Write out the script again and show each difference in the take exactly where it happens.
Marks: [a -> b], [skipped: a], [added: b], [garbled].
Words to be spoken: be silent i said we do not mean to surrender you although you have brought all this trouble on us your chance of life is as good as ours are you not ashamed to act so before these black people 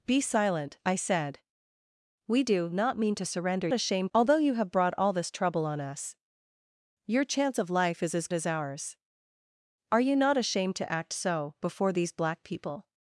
be silent i said we do not mean to surrender [you -> ashamed] although you have brought all this trouble on us your chance of life is as [skipped: good] as ours are you not ashamed to act so before these black people